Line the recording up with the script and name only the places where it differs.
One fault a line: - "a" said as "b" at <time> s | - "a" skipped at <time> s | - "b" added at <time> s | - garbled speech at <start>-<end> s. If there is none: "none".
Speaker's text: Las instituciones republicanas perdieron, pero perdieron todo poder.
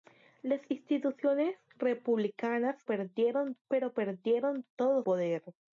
none